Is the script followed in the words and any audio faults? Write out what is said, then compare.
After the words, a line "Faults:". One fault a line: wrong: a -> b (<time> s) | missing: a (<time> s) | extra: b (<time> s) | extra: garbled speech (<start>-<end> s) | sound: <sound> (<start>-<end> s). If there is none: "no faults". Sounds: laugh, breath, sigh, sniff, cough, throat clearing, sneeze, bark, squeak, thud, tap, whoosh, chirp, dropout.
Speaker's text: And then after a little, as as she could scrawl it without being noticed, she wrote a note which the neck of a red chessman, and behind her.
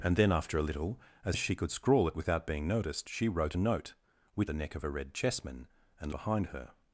And then after a little, as as she could scrawl it without being noticed, she wrote a note which the neck of a red chessman, and behind her.
Faults:
no faults